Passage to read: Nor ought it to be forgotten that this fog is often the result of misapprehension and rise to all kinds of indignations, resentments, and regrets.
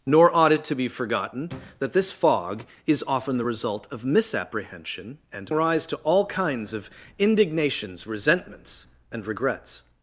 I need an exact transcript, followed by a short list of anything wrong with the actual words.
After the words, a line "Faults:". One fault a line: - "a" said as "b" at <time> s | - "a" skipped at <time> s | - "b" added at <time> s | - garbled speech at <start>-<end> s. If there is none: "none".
Nor ought it to be forgotten that this fog is often the result of misapprehension and rise to all kinds of indignations, resentments, and regrets.
Faults:
none